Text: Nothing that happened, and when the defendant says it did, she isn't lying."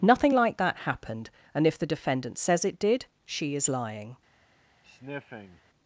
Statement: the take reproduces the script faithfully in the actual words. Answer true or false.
false